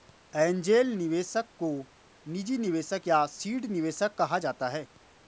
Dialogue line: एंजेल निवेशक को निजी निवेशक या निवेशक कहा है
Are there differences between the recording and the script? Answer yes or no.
yes